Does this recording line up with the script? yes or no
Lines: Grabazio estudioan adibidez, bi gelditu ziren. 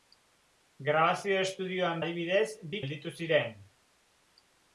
yes